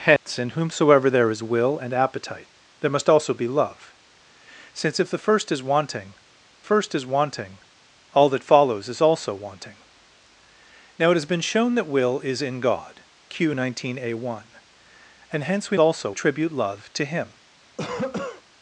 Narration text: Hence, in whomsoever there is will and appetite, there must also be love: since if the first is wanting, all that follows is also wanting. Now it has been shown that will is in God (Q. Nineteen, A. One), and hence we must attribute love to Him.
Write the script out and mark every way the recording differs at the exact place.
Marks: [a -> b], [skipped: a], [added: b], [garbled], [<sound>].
Hence, [dropout] in whomsoever there is will and appetite, there must also be love: since if the first is wanting, [added: first is wanting] all that follows is also wanting. Now it has been shown that will is in God (Q. Nineteen, A. One), and hence we [must -> also] attribute love to Him. [cough]